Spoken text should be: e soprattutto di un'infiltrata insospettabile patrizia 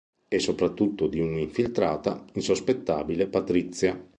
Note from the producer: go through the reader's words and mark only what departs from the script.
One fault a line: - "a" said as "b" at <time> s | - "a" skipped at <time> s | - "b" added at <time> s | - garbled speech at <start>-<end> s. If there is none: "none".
none